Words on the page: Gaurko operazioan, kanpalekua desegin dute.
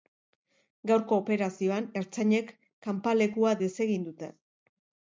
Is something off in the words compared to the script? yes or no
yes